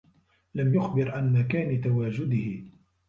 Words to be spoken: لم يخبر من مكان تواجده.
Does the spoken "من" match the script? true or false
false